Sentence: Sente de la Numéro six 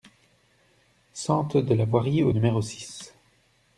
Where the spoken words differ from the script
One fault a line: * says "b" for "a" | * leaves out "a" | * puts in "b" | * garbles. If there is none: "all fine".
* puts in "Voirie au"